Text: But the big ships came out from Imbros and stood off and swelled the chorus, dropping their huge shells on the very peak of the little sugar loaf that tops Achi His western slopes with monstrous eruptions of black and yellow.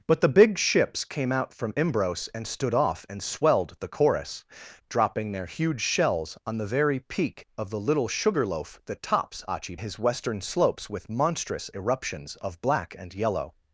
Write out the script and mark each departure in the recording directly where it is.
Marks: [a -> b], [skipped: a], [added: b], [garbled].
But the big ships came out from Imbros and stood off and swelled the chorus, dropping their huge shells on the very peak of the little sugar loaf that tops Achi His western slopes with monstrous eruptions of black and yellow.